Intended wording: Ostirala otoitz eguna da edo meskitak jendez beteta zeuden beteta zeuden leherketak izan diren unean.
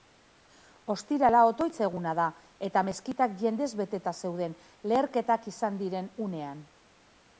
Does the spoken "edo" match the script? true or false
false